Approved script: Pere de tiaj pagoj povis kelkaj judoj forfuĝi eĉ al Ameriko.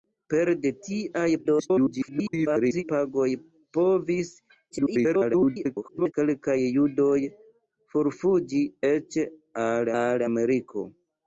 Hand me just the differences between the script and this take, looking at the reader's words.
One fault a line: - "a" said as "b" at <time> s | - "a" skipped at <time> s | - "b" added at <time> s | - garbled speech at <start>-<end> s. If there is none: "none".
- garbled speech at 1.4-2.8 s
- garbled speech at 4.7-6.1 s
- "al" added at 10.0 s